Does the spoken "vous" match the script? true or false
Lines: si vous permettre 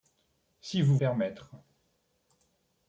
true